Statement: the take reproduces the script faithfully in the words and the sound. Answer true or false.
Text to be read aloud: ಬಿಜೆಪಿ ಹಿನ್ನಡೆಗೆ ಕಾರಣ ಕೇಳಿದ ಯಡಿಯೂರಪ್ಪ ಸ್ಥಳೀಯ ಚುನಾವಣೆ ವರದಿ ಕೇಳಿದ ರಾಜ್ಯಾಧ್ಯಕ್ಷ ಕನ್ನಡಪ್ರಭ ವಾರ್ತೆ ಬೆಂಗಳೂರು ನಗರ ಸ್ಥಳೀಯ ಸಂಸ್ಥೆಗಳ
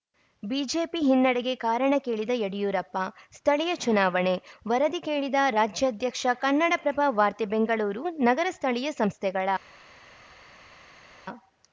true